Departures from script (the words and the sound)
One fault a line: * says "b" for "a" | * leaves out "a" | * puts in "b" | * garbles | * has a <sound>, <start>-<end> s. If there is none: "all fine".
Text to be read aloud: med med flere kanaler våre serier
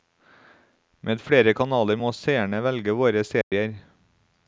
* leaves out "med"
* puts in "må seerne velge"
* has a dropout, 3.4-3.5 s